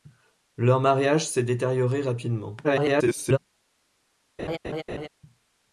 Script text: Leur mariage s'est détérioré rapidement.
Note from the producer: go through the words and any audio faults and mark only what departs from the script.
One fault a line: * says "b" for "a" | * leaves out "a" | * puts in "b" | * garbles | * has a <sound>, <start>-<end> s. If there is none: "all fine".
* garbles
* has a laugh, 4.4-5.1 s